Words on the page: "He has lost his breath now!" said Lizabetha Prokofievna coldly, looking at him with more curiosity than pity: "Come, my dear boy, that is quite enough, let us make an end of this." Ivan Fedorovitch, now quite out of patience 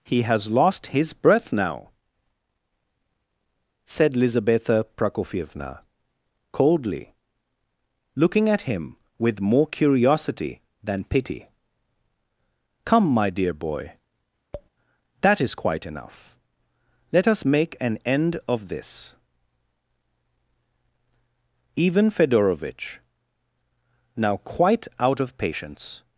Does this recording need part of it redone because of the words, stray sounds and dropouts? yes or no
yes